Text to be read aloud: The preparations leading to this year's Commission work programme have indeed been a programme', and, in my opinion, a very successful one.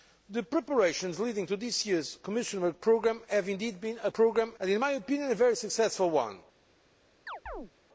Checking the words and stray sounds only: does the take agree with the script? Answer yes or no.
no